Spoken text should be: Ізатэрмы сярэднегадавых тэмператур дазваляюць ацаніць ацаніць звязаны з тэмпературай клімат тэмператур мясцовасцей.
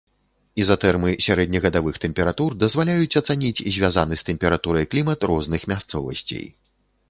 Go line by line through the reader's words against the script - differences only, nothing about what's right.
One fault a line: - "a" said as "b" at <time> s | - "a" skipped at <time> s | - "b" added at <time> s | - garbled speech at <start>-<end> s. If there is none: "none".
- "ацаніць" skipped at 3.6 s
- "тэмператур" said as "розных" at 5.3 s